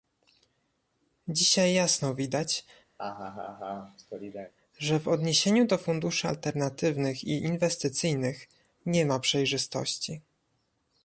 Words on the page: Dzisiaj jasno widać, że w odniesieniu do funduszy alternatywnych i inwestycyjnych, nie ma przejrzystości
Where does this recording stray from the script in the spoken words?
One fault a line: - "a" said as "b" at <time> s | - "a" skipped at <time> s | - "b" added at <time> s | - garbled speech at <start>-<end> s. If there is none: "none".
none